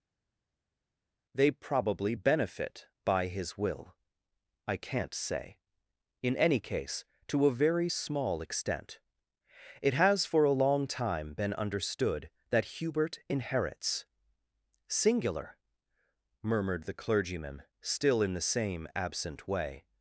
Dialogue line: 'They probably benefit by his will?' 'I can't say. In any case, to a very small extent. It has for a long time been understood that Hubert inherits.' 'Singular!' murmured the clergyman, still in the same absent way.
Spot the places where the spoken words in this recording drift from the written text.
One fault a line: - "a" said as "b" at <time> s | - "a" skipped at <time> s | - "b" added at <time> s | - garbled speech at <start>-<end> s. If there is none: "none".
none